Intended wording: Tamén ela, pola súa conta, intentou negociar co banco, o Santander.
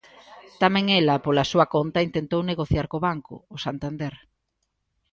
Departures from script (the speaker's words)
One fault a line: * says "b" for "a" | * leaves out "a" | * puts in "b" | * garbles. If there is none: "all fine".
all fine